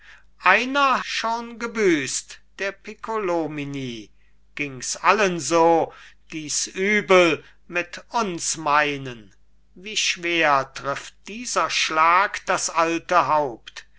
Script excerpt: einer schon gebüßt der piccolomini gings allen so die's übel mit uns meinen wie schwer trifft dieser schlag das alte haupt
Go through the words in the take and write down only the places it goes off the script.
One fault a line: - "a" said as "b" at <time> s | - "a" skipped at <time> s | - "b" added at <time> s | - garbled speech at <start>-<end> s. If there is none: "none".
none